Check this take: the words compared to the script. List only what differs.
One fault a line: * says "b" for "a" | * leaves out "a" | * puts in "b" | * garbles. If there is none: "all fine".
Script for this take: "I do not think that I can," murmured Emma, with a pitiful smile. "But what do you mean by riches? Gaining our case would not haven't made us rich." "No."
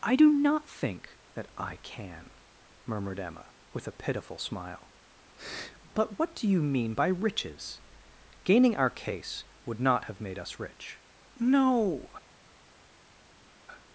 * says "have" for "haven't"